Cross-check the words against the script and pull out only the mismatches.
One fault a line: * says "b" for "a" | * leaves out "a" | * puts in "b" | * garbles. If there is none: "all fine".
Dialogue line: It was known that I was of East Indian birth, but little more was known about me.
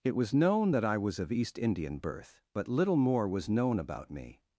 all fine